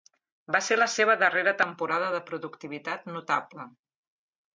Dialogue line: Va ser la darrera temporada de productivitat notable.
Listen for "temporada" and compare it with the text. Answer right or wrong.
right